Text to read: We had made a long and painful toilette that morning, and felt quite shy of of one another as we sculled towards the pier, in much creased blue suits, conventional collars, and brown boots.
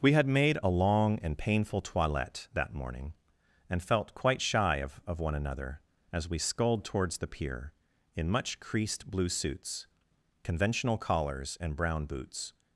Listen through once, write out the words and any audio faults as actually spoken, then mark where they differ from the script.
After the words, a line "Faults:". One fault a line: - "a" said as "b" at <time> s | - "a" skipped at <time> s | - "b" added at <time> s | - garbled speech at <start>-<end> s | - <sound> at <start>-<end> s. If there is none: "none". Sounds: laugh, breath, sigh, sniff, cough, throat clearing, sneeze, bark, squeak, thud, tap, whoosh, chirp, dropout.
We had made a long and painful toilette that morning, and felt quite shy of of one another as we sculled towards the pier, in much creased blue suits, conventional collars, and brown boots.
Faults:
none